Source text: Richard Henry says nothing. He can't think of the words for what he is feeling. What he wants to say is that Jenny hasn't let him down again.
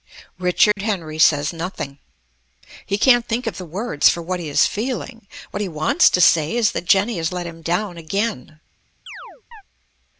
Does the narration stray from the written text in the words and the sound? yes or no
yes